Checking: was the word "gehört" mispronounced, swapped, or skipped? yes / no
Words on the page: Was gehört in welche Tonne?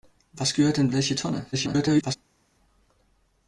no